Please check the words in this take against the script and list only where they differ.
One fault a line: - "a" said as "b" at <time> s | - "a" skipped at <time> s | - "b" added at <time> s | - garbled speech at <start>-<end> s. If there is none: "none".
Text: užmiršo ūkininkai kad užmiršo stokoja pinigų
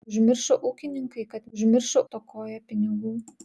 none